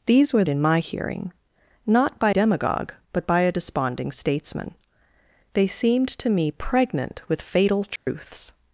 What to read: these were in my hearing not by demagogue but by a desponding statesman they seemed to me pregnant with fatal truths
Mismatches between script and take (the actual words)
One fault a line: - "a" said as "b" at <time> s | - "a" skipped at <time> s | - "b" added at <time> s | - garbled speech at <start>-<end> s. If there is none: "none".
none